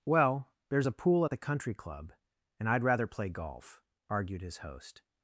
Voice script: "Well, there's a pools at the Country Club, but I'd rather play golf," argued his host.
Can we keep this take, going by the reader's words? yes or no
no